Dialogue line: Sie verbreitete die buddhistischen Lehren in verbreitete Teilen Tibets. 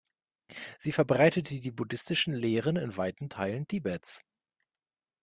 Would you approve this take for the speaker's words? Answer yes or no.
no